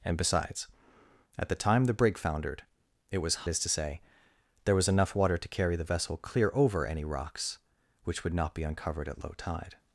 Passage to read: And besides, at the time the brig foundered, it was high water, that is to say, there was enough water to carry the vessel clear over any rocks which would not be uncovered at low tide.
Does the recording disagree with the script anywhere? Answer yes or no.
yes